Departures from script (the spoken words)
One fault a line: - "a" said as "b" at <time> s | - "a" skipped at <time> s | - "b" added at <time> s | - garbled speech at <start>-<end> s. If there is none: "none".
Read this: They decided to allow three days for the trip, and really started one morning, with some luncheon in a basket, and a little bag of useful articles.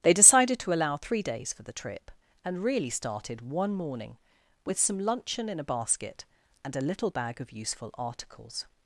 none